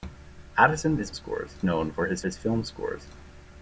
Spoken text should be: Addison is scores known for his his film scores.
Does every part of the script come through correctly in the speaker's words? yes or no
yes